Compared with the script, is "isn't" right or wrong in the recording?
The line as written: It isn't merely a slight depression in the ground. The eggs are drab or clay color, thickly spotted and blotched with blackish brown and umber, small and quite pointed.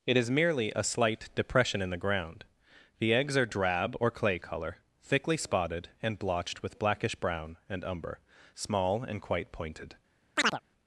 wrong